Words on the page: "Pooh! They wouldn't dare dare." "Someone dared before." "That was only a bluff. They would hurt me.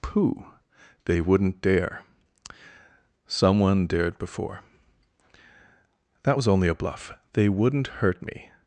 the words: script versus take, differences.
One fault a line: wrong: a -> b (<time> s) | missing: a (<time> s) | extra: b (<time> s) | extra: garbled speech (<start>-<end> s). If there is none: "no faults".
missing: dare (2.0 s)
wrong: would -> wouldn't (7.5 s)